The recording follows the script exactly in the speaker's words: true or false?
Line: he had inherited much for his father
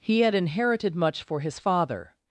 true